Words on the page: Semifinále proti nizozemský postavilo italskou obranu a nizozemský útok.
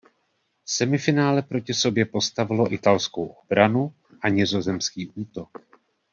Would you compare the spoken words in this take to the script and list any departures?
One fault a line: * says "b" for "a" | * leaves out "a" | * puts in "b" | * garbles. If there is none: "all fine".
* says "sobě" for "nizozemský"